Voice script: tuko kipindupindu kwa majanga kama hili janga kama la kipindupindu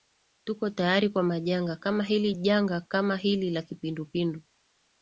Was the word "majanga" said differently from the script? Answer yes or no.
no